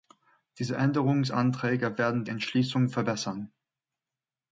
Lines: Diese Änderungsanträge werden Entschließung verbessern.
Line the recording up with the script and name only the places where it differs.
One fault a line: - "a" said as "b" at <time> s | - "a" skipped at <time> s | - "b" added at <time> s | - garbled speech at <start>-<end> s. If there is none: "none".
none